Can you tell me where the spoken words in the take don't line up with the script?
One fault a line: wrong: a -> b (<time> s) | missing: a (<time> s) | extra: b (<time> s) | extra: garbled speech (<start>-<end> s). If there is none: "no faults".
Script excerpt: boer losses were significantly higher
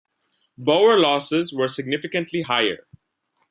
no faults